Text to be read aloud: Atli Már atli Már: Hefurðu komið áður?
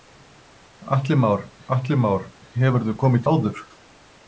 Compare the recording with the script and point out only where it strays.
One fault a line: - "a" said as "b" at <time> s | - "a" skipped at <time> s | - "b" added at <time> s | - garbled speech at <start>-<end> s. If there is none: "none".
none